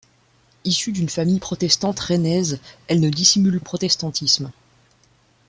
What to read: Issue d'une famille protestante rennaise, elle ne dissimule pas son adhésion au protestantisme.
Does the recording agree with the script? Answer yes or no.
no